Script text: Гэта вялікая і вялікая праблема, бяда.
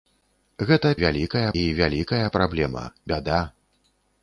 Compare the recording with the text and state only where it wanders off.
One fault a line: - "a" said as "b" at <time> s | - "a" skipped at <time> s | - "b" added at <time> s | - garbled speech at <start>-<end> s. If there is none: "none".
none